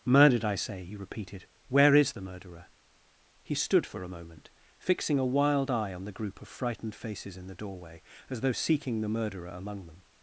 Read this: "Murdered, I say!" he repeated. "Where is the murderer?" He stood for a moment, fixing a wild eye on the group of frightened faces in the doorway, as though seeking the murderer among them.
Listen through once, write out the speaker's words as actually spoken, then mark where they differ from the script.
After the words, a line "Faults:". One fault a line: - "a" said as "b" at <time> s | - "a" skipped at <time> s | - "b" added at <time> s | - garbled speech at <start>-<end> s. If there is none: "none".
"Murdered, I say!" he repeated. "Where is the murderer?" He stood for a moment, fixing a wild eye on the group of frightened faces in the doorway, as though seeking the murderer among them.
Faults:
none